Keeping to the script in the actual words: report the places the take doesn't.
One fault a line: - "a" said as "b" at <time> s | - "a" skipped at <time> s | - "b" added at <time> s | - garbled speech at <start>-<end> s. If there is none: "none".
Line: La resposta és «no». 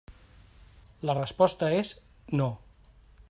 none